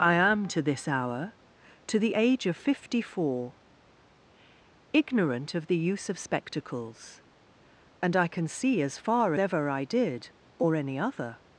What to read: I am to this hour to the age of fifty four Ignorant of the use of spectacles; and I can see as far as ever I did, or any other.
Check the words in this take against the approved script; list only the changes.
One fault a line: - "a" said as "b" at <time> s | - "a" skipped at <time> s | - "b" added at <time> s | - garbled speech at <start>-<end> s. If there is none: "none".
- "as" skipped at 9.3 s